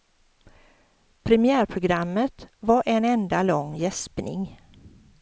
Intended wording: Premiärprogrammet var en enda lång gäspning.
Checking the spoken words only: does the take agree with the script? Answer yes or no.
yes